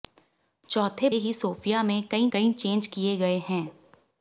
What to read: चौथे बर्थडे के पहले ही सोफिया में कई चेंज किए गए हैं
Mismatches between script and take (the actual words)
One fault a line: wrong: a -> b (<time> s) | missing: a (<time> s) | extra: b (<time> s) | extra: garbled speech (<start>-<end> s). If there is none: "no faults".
missing: बर्थडे के पहले (1.1 s)
extra: कई (2.3 s)